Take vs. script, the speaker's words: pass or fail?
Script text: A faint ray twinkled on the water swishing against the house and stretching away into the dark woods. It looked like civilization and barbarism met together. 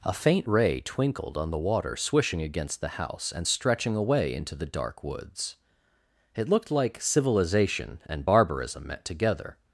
pass